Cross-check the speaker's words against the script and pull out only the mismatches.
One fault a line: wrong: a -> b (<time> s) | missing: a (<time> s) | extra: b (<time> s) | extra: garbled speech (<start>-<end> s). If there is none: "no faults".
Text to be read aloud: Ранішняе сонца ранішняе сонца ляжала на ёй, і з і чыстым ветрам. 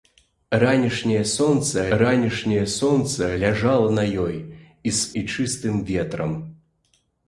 no faults